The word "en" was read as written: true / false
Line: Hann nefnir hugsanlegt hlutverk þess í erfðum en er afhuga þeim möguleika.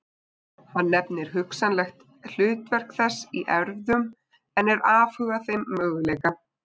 true